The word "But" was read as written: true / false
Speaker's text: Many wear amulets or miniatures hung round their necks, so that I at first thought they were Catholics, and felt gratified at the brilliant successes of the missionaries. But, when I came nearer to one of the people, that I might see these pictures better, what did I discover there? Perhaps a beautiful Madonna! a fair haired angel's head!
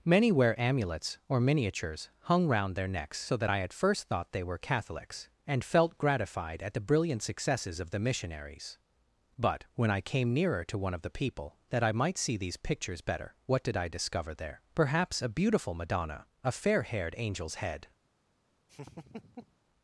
true